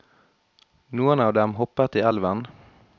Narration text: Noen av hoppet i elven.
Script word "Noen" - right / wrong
right